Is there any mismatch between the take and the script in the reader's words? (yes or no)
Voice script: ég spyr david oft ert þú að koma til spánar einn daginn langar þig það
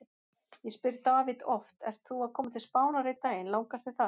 no